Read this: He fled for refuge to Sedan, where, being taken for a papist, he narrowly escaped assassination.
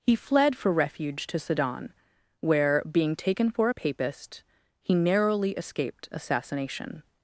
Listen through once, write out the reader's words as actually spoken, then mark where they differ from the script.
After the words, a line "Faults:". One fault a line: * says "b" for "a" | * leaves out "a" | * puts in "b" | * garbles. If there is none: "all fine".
He fled for refuge to Sedan, where, being taken for a papist, he narrowly escaped assassination.
Faults:
all fine